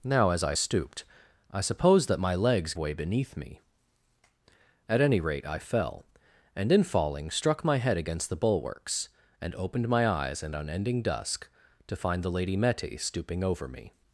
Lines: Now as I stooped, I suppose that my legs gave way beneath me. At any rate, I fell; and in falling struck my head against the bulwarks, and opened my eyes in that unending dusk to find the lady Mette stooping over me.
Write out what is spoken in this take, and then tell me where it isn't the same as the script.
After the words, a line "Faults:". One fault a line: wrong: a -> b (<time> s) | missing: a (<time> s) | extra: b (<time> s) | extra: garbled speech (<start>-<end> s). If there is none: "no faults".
Now as I stooped, I suppose that my legs way beneath me. At any rate, I fell; and in falling struck my head against the bulwarks, and opened my eyes in unending dusk to find the lady Mette stooping over me.
Faults:
missing: gave (2.7 s)
missing: that (10.5 s)